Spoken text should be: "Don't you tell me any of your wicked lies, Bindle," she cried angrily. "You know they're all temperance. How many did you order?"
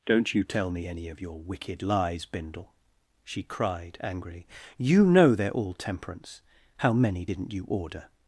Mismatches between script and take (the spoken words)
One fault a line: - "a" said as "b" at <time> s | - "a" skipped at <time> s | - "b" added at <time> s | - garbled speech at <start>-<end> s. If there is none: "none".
- "did" said as "didn't" at 7.2 s